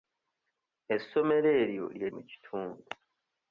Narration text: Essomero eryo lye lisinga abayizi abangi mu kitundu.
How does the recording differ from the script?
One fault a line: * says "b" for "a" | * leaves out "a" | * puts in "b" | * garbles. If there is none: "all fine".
* leaves out "lisinga abayizi abangi"